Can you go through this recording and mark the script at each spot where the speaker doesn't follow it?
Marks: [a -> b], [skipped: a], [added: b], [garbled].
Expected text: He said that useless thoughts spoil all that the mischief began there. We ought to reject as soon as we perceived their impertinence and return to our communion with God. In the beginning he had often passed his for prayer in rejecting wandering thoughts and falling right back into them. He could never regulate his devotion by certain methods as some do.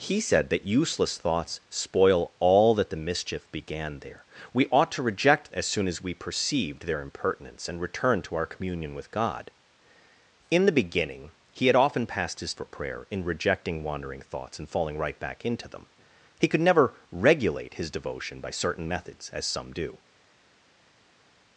He said that useless thoughts spoil all that the mischief began there. We ought to reject as soon as we perceived their impertinence and return to our communion with God. In the beginning he had often passed his for prayer in rejecting wandering thoughts and falling right back into them. He could never regulate his devotion by certain methods as some do.